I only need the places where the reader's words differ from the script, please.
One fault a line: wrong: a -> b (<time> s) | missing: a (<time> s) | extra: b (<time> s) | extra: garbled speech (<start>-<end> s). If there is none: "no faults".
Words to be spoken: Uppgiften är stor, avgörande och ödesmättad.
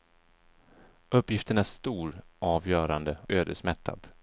missing: och (3.2 s)